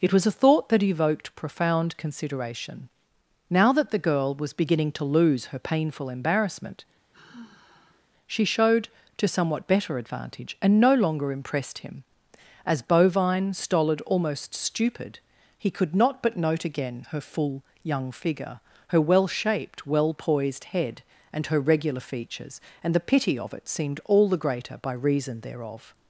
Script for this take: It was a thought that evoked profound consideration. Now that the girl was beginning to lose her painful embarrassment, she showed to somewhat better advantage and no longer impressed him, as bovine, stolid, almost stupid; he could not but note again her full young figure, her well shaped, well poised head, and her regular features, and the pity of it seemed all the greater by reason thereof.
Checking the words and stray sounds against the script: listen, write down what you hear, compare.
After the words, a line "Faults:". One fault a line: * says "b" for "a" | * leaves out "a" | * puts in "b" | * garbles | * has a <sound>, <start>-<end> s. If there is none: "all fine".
It was a thought that evoked profound consideration. Now that the girl was beginning to lose her painful embarrassment, she showed to somewhat better advantage and no longer impressed him, as bovine, stolid, almost stupid; he could not but note again her full young figure, her well shaped, well poised head, and her regular features, and the pity of it seemed all the greater by reason thereof.
Faults:
* has a sigh, 7.1-8.1 s